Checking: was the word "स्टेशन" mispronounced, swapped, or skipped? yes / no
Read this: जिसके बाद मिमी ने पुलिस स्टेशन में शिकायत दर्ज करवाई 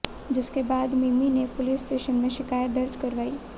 no